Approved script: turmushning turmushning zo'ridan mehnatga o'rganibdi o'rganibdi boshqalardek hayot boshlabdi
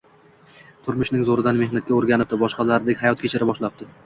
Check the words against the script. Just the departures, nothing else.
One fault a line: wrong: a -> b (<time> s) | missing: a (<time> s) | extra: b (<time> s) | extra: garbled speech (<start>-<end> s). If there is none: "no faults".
missing: turmushning (1.2 s)
missing: o'rganibdi (2.4 s)
extra: kechira (3.3 s)